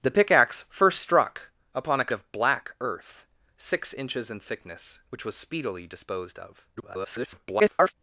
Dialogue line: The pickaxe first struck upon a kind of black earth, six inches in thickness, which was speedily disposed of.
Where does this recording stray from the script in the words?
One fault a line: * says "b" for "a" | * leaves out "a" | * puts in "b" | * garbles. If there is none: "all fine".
* leaves out "kind"
* garbles